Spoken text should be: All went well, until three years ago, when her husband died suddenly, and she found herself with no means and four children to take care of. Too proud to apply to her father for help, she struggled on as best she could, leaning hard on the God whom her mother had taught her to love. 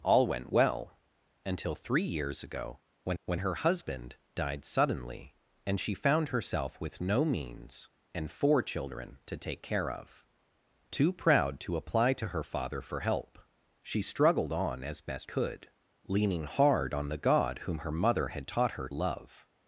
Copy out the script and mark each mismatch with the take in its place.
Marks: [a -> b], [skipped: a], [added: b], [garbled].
All went well, until three years ago, when [added: when] her husband died suddenly, and she found herself with no means and four children to take care of. Too proud to apply to her father for help, she struggled on as best [skipped: she] could, leaning hard on the God whom her mother had taught her [skipped: to] love.